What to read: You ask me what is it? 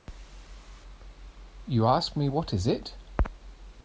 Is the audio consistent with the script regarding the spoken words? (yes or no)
yes